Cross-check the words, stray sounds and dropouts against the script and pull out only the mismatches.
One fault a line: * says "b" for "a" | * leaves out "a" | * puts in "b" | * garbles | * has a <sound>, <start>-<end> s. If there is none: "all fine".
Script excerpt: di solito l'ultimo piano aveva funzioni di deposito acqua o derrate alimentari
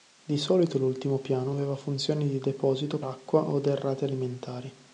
all fine